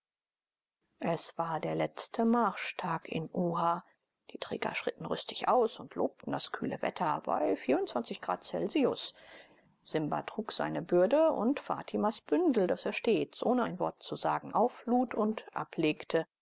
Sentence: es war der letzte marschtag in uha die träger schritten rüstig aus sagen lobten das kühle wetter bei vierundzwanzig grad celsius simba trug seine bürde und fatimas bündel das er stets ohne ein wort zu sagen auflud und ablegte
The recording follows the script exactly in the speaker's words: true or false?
false